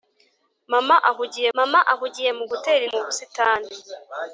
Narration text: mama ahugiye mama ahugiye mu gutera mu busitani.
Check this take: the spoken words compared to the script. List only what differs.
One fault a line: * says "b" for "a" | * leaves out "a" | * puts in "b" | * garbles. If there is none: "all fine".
all fine